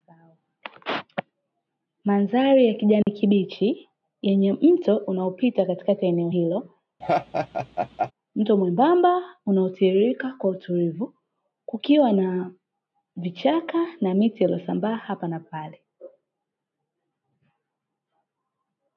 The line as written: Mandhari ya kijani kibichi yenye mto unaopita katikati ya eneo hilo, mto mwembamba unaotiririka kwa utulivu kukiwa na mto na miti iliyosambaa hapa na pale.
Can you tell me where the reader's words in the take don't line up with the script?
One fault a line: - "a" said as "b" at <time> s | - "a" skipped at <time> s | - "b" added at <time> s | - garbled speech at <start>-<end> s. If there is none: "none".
- "mto" said as "vichaka" at 13.2 s